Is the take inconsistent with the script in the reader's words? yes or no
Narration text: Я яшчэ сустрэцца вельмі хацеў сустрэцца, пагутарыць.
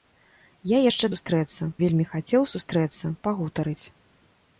no